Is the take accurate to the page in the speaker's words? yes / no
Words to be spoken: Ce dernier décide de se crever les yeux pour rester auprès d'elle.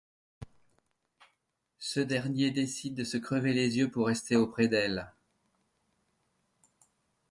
yes